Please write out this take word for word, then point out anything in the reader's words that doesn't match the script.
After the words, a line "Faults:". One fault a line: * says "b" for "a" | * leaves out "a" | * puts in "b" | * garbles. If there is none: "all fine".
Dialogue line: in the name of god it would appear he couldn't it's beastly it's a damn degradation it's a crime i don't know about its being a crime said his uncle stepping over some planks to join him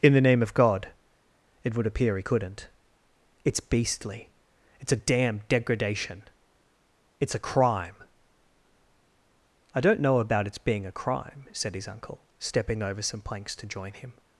in the name of god it would appear he couldn't it's beastly it's a damn degradation it's a crime i don't know about its being a crime said his uncle stepping over some planks to join him
Faults:
all fine